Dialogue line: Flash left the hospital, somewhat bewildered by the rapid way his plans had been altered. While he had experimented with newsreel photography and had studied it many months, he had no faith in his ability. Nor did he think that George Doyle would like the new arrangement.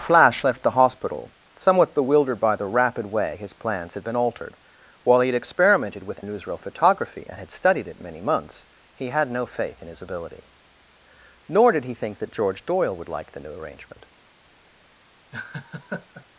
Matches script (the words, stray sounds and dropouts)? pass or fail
fail